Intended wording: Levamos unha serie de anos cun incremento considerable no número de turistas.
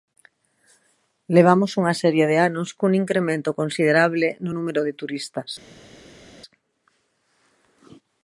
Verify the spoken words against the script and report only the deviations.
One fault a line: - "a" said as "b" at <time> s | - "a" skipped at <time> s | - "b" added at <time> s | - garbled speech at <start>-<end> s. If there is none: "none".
none